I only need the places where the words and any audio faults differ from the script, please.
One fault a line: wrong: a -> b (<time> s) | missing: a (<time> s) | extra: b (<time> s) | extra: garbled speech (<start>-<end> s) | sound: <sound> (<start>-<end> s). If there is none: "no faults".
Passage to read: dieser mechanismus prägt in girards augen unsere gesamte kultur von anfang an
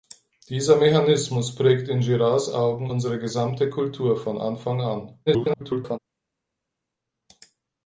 extra: garbled speech (5.3-6.0 s)